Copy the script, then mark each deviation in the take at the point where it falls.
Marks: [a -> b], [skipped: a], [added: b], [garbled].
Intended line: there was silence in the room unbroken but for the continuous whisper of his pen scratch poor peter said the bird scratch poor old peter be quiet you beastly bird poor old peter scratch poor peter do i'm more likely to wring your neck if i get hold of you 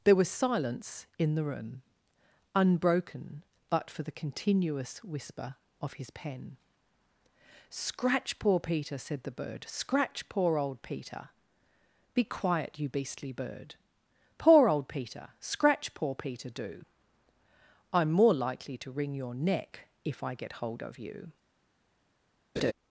there was silence in the room unbroken but for the continuous whisper of his pen scratch poor peter said the bird scratch poor old peter be quiet you beastly bird poor old peter scratch poor peter do i'm more likely to wring your neck if i get hold of you